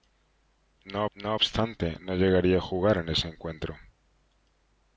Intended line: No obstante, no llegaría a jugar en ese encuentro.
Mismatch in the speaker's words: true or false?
true